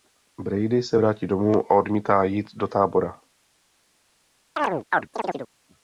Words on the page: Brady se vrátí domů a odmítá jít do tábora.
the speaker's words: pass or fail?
pass